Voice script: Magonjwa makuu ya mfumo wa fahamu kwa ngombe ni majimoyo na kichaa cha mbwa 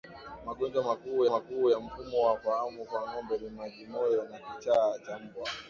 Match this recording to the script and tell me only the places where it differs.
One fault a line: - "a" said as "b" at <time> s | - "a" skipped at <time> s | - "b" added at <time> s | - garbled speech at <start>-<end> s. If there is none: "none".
- "makuu" added at 1.3 s